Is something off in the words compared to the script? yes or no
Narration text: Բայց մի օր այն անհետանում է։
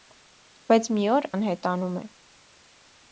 yes